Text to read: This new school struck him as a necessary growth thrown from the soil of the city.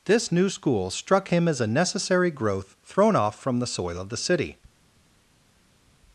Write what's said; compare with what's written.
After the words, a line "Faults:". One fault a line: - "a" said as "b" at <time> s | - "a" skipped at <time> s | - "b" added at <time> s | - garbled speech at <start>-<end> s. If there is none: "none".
This new school struck him as a necessary growth thrown off from the soil of the city.
Faults:
- "off" added at 3.2 s